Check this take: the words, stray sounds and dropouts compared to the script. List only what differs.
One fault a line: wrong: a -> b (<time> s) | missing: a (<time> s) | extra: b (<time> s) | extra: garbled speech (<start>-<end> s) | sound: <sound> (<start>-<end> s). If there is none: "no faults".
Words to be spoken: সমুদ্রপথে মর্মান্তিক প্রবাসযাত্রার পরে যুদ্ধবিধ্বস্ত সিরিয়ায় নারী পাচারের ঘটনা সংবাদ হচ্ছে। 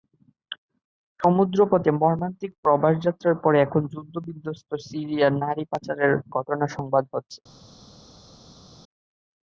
extra: এখন (3.6 s)